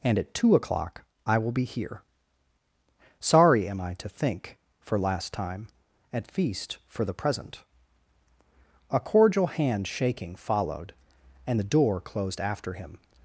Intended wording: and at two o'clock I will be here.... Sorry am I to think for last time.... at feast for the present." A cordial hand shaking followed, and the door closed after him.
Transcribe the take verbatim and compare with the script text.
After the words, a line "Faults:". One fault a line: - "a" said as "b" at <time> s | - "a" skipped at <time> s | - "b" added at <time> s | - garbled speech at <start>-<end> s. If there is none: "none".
and at two o'clock I will be here.... Sorry am I to think for last time.... at feast for the present." A cordial hand shaking followed, and the door closed after him.
Faults:
none